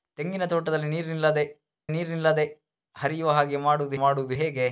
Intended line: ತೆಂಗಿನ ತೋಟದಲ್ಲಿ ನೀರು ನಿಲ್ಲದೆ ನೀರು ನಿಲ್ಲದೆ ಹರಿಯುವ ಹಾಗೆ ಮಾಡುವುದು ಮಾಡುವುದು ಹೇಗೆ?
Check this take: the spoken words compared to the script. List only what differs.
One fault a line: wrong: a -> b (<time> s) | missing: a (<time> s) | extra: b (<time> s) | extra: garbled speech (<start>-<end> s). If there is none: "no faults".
no faults